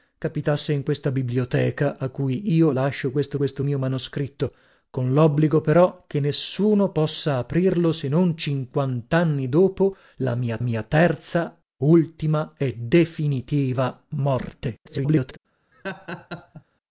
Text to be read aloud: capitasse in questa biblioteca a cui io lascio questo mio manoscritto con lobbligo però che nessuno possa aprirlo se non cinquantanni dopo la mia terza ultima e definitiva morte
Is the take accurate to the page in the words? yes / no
no